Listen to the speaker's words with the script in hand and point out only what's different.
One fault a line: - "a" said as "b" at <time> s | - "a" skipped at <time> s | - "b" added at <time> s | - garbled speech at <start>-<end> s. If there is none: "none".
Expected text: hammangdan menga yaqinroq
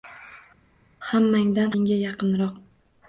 none